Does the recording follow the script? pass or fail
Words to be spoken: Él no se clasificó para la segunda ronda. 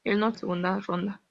fail